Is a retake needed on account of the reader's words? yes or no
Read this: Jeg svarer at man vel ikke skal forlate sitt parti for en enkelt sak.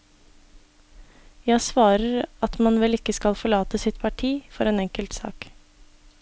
no